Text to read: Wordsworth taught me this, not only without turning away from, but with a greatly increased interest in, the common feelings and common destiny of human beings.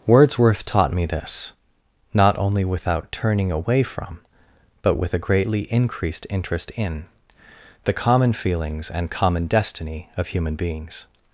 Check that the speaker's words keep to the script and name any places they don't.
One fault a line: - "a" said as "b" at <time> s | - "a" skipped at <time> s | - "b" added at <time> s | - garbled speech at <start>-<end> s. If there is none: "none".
none